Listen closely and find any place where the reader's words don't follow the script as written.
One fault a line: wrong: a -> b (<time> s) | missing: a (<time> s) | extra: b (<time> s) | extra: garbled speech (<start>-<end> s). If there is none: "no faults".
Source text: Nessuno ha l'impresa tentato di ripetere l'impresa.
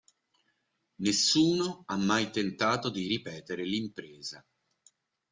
wrong: l'impresa -> mai (1.9 s)